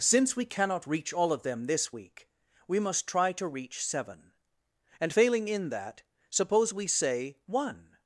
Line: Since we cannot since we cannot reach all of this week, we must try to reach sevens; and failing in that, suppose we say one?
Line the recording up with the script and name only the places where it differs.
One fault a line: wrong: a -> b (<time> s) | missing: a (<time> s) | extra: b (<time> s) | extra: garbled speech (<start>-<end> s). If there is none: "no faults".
missing: since we cannot (0.9 s)
extra: them (1.4 s)
wrong: sevens -> seven (3.8 s)